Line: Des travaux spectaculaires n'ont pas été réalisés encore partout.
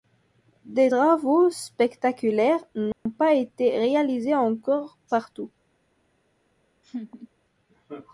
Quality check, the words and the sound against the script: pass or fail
fail